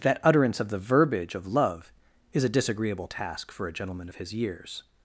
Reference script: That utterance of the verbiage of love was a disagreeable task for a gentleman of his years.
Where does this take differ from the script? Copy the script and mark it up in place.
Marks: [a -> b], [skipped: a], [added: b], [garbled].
That utterance of the verbiage of love [was -> is] a disagreeable task for a gentleman of his years.